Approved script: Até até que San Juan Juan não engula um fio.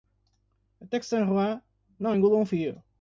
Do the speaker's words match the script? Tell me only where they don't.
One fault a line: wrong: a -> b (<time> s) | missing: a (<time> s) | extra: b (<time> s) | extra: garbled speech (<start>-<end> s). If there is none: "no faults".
missing: até (1.0 s)
missing: Juan (1.6 s)